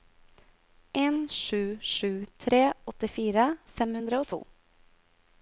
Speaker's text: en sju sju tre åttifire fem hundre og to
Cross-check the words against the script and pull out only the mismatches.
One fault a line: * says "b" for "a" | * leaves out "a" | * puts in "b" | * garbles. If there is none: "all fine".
all fine